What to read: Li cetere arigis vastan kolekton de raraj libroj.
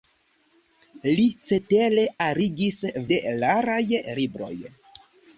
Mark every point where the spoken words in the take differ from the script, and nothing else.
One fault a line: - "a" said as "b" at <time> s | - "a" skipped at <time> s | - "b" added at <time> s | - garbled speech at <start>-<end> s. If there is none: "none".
- "vastan kolekton" skipped at 2.8 s